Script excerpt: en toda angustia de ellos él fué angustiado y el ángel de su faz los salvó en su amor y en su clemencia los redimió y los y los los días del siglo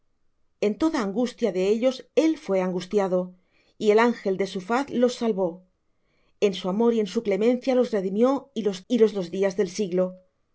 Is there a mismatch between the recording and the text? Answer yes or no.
no